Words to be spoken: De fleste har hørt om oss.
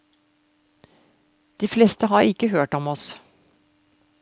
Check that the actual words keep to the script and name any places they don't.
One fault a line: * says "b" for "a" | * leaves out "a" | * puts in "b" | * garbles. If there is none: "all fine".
* puts in "ikke"